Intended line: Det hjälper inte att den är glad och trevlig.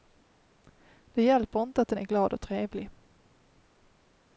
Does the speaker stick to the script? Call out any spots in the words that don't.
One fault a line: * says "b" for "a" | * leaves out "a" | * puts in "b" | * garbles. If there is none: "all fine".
all fine